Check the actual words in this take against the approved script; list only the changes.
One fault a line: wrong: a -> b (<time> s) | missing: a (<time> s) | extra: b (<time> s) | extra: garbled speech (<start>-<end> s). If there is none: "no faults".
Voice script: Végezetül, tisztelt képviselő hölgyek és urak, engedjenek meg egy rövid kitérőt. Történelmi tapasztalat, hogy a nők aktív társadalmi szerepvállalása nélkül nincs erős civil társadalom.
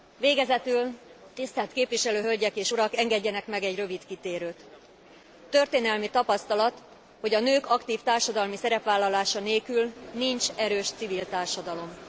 no faults